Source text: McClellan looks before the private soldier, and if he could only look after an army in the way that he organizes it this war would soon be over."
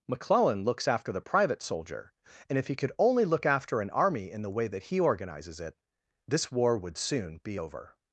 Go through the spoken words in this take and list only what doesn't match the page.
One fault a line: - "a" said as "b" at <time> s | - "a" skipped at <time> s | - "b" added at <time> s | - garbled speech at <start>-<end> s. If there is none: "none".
- "before" said as "after" at 0.9 s